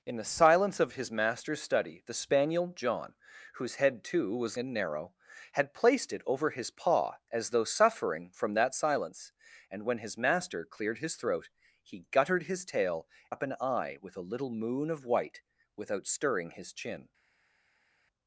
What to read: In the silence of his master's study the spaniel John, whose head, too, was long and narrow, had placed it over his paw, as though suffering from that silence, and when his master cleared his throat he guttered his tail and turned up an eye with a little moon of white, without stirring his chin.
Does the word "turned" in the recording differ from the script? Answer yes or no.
yes